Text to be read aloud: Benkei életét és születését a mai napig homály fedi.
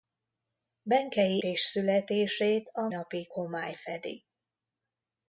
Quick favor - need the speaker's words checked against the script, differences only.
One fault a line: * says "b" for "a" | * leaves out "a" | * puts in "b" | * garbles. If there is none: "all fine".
* leaves out "életét"
* leaves out "mai"